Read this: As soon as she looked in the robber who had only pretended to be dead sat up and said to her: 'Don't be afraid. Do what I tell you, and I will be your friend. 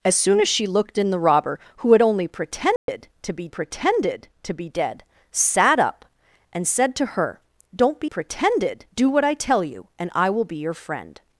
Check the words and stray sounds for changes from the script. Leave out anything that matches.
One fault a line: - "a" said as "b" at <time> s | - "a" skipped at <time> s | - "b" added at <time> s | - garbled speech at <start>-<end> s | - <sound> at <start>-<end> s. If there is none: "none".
- dropout at 2.8-2.9 s
- "pretended to be" added at 3.5 s
- "afraid" said as "pretended" at 8.0 s